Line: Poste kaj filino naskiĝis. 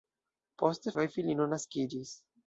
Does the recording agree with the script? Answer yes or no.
yes